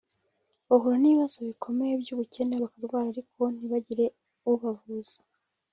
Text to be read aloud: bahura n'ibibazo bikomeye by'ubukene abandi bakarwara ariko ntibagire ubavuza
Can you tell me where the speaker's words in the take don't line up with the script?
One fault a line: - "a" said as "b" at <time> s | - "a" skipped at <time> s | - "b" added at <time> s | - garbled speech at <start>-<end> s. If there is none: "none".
- "abandi" skipped at 2.5 s